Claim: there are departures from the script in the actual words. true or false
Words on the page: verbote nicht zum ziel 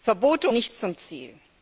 false